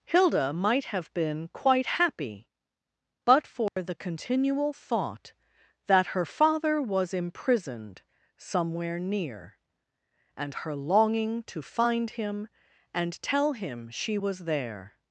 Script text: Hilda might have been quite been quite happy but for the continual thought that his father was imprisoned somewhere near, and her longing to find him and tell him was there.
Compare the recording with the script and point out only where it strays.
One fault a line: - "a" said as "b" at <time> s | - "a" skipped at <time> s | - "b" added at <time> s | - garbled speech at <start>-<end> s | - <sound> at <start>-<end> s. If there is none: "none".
- "been quite" skipped at 1.9 s
- dropout at 3.7-3.8 s
- "his" said as "her" at 6.1 s
- "she" added at 13.9 s